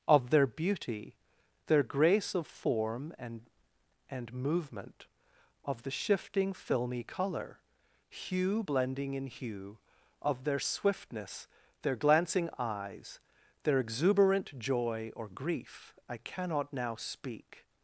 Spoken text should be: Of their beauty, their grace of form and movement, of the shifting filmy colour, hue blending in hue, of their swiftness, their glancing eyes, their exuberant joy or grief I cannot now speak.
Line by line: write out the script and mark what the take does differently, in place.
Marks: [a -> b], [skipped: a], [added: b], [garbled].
Of their beauty, their grace of form and [added: and] movement, of the shifting filmy colour, hue blending in hue, of their swiftness, their glancing eyes, their exuberant joy or grief I cannot now speak.